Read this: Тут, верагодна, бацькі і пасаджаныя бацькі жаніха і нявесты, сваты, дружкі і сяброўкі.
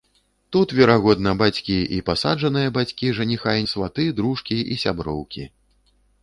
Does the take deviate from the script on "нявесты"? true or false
true